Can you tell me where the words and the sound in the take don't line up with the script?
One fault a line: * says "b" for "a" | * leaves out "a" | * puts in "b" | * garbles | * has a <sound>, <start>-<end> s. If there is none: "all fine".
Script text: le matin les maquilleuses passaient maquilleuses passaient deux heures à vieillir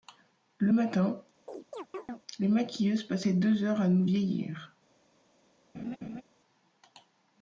* has a chirp, 1.5-2.2 s
* leaves out "maquilleuses passaient"
* puts in "nous"
* has a laugh, 5.7-6.2 s